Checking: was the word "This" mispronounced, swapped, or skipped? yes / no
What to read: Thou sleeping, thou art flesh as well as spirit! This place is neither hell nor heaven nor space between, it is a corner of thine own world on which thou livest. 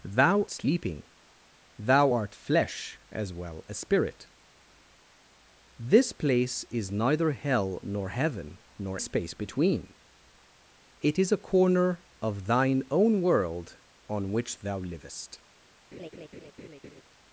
no